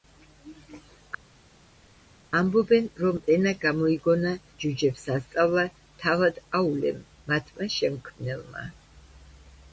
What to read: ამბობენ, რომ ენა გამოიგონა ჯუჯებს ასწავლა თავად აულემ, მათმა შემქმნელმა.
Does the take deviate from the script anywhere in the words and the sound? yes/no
no